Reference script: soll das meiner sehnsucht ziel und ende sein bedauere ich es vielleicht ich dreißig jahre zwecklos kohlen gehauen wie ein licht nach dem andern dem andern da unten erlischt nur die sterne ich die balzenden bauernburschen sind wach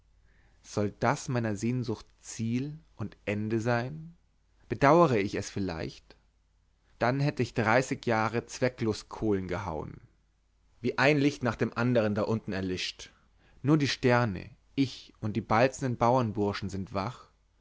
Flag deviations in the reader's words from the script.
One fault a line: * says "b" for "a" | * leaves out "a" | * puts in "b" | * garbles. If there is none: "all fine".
* puts in "dann hätte"
* leaves out "dem andern"
* puts in "und"